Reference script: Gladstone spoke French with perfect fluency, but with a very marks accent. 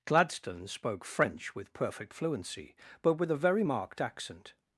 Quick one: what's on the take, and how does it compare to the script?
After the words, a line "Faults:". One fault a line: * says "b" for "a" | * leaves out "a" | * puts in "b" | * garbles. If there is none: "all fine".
Gladstone spoke French with perfect fluency, but with a very marked accent.
Faults:
* says "marked" for "marks"